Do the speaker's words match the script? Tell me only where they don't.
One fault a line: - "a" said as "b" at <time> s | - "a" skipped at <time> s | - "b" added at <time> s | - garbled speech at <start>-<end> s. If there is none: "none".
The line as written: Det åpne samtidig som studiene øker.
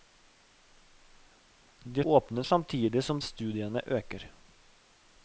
none